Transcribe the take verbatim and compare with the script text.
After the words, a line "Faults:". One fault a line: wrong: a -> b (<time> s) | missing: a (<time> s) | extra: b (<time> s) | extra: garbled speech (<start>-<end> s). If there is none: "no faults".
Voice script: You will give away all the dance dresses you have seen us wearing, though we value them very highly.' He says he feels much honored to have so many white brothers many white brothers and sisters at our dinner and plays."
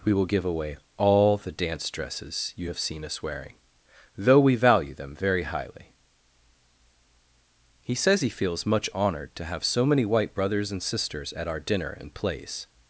We will give away all the dance dresses you have seen us wearing, though we value them very highly.' He says he feels much honored to have so many white brothers and sisters at our dinner and plays."
Faults:
wrong: You -> We (0.0 s)
missing: many white brothers (10.7 s)